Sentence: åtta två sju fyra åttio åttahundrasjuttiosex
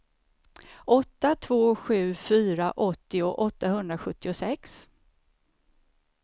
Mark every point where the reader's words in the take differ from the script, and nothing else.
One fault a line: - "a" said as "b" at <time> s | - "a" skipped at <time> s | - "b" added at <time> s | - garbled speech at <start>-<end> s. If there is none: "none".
none